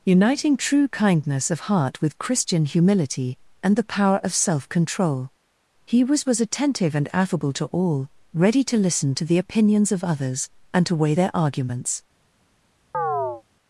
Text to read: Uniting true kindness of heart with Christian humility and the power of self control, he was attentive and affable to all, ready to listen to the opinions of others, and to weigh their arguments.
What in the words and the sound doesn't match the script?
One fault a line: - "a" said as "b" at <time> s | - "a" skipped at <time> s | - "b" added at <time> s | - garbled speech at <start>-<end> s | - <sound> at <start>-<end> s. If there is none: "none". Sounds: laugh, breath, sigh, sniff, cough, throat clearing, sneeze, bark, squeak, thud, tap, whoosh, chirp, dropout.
- "was" added at 6.2 s
- chirp at 12.9-13.4 s